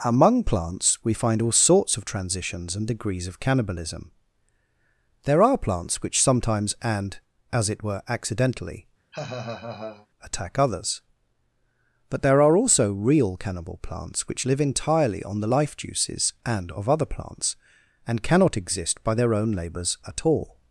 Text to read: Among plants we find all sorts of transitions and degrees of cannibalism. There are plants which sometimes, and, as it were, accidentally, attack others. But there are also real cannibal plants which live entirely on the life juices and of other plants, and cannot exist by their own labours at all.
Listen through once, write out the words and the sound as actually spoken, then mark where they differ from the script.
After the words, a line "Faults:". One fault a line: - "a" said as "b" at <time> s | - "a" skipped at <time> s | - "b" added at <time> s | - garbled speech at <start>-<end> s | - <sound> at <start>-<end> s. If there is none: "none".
Among plants we find all sorts of transitions and degrees of cannibalism. There are plants which sometimes, and, as it were, accidentally, attack others. But there are also real cannibal plants which live entirely on the life juices and of other plants, and cannot exist by their own labours at all.
Faults:
- laugh at 9.1-10.1 s